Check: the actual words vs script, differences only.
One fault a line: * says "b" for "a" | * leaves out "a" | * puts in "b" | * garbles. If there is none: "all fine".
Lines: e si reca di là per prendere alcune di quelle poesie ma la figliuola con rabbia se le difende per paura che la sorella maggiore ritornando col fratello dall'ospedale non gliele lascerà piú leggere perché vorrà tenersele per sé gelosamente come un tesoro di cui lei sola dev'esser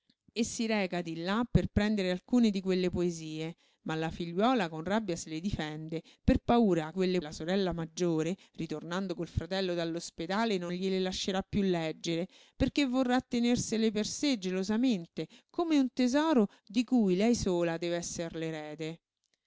* says "quelle" for "che"